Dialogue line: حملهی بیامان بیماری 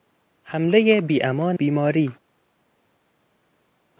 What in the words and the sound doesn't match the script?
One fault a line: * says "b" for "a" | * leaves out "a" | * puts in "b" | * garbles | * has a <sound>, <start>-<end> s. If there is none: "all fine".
all fine